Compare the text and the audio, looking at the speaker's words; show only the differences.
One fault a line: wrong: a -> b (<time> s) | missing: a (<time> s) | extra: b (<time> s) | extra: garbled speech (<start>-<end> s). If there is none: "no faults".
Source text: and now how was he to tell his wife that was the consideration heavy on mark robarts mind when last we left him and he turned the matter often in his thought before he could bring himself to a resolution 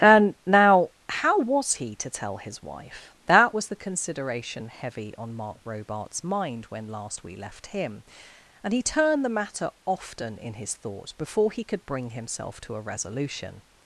no faults